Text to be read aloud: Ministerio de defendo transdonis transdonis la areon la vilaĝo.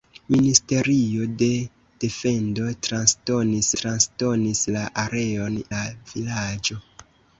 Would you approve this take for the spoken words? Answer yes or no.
yes